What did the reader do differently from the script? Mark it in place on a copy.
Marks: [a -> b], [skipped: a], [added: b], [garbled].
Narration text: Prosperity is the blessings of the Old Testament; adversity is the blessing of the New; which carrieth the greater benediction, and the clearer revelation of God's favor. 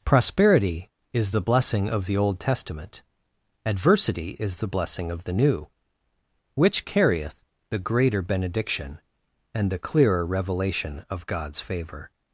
Prosperity is the [blessings -> blessing] of the Old Testament; adversity is the blessing of the New; which carrieth the greater benediction, and the clearer revelation of God's favor.